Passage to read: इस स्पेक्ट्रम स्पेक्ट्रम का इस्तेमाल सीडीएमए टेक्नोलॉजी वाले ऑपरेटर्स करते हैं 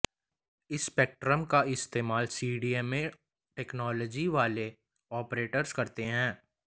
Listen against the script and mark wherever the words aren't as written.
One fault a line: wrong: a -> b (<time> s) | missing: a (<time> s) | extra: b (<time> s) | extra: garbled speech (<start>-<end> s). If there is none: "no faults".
missing: स्पेक्ट्रम (1.4 s)